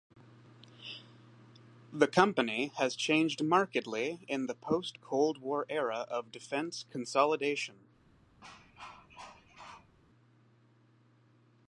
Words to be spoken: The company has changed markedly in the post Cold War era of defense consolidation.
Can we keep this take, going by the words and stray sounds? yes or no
no